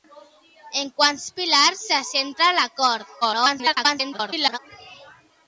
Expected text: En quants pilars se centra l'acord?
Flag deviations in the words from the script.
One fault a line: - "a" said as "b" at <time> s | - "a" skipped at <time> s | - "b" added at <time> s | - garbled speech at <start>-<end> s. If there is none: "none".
- garbled speech at 3.2-4.6 s